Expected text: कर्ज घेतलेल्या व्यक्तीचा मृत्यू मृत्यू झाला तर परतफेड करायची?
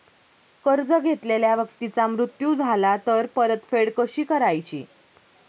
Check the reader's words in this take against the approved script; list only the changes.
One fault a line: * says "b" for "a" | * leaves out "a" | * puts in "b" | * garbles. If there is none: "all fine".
* leaves out "मृत्यू"
* puts in "कशी"